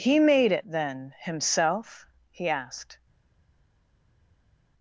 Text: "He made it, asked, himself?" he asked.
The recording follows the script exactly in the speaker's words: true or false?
false